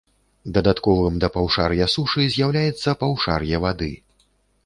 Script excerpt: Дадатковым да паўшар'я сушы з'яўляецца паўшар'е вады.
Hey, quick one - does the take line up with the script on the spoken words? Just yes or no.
yes